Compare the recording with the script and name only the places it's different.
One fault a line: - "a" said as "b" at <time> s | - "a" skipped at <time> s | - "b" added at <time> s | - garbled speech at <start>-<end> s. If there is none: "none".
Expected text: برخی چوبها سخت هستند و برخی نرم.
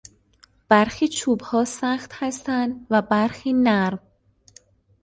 none